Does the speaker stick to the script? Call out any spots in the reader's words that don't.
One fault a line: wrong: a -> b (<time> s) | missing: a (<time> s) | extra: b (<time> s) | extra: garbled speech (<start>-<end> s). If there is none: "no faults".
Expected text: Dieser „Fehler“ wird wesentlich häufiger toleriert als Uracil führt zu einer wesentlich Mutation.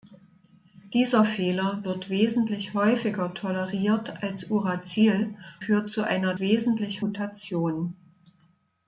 no faults